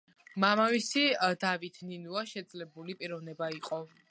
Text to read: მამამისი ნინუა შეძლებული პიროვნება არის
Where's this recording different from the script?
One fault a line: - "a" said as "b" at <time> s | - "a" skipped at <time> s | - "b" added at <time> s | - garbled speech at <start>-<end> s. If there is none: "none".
- "დავით" added at 1.4 s
- "არის" said as "იყო" at 3.6 s